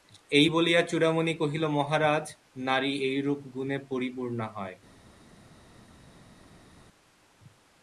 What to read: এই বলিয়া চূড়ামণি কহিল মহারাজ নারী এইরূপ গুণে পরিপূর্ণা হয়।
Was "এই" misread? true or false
false